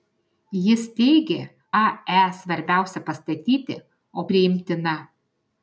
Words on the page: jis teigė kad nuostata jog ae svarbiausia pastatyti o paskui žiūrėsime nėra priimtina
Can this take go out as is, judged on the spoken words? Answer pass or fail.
fail